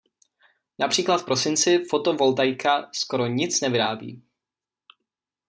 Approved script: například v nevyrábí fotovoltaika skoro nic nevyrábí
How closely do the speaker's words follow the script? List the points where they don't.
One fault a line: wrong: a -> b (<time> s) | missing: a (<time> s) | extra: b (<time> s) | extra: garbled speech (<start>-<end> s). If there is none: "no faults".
wrong: nevyrábí -> prosinci (1.2 s)